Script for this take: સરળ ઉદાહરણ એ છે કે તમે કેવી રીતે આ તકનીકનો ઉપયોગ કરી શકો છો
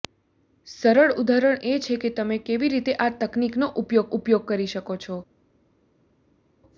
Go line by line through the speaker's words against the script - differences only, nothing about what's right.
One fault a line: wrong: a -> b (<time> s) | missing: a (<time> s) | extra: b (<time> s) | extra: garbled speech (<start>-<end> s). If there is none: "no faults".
extra: ઉપયોગ (4.1 s)